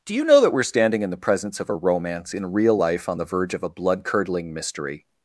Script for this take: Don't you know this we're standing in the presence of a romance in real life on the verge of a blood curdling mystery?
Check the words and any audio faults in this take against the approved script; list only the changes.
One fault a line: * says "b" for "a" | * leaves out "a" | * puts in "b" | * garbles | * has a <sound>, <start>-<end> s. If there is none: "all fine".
* says "Do" for "Don't"
* says "that" for "this"